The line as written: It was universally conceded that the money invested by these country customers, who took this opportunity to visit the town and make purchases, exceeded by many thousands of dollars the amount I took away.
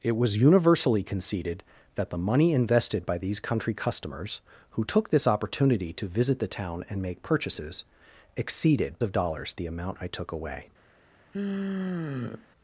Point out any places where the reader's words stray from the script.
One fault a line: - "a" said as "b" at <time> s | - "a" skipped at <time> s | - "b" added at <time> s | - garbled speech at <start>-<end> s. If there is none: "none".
- "by many thousands" skipped at 9.0 s